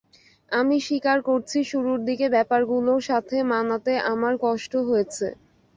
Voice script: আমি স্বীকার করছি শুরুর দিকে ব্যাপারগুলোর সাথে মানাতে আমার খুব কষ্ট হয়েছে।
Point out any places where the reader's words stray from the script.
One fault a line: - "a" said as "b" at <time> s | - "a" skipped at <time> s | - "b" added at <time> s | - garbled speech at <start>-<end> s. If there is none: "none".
- "খুব" skipped at 4.3 s